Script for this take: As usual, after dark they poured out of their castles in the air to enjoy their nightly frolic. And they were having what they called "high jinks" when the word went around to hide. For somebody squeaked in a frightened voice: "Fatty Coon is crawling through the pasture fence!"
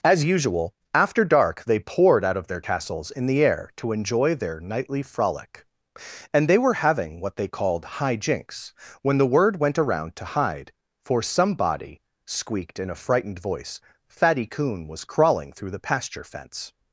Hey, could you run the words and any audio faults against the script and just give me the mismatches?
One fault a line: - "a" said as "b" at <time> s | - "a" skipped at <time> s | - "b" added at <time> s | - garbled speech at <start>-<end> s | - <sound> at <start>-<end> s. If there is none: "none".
- "is" said as "was" at 14.9 s